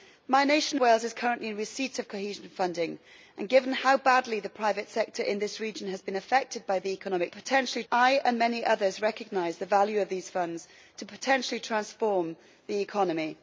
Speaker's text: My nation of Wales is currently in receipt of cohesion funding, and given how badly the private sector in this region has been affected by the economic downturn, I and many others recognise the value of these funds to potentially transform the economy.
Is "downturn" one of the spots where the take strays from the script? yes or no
yes